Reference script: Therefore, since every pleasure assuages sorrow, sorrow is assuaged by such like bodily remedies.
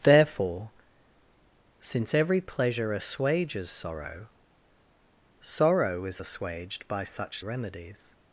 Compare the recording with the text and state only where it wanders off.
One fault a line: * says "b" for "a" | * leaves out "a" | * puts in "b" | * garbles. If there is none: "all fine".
* leaves out "like bodily"